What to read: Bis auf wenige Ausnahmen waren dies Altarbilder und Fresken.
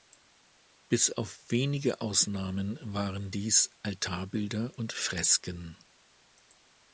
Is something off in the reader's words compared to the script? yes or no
no